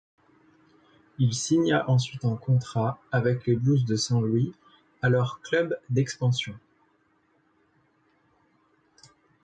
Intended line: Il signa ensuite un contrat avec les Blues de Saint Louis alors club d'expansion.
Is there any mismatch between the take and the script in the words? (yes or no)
no